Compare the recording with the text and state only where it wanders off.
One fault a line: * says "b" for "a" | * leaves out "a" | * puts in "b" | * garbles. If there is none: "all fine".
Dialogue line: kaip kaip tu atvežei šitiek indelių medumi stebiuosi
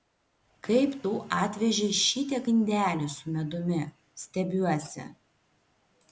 * leaves out "kaip"
* puts in "su"